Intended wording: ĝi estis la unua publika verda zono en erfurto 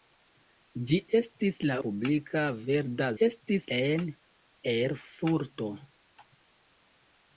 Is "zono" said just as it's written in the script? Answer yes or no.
no